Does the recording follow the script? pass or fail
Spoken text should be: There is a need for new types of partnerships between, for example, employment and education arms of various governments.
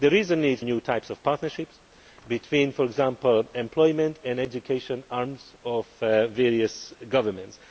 fail